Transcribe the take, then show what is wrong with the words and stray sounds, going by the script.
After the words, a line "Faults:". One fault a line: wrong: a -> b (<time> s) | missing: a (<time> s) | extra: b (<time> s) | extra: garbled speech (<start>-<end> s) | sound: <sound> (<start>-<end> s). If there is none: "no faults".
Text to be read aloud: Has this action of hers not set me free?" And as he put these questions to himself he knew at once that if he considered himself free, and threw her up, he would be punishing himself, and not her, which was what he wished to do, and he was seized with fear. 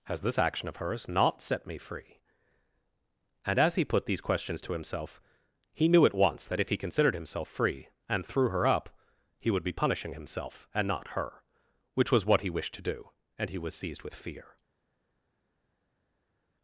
Has this action of hers not set me free?" And as he put these questions to himself he knew at once that if he considered himself free, and threw her up, he would be punishing himself, and not her, which was what he wished to do, and he was seized with fear.
Faults:
no faults